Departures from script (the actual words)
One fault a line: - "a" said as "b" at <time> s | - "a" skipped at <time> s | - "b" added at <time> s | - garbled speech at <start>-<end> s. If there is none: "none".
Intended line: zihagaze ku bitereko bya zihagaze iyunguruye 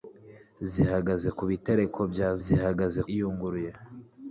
none